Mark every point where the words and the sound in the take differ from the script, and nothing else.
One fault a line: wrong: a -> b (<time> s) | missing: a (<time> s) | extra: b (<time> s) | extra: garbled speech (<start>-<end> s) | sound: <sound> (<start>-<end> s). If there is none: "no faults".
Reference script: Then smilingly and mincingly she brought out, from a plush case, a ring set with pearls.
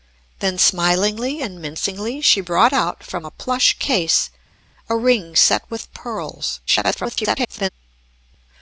extra: garbled speech (6.7-7.7 s)